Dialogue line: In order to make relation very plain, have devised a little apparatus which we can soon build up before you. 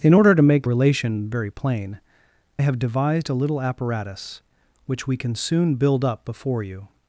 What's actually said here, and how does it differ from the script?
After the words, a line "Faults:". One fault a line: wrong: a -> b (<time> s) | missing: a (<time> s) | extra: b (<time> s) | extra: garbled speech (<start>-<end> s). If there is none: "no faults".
In order to make relation very plain, have devised a little apparatus which we can soon build up before you.
Faults:
no faults